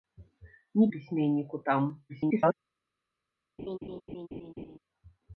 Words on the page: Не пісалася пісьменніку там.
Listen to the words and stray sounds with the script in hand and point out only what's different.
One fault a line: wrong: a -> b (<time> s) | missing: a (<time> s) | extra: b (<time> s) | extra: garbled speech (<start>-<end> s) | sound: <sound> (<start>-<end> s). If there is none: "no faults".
missing: пісалася (0.9 s)
extra: garbled speech (2.1-2.5 s)
sound: laugh (3.6-4.8 s)